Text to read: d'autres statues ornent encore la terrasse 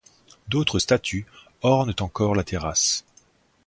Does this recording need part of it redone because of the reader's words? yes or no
no